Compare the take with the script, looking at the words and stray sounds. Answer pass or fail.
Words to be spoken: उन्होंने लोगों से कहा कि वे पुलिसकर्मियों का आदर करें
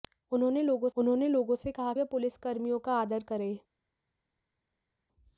fail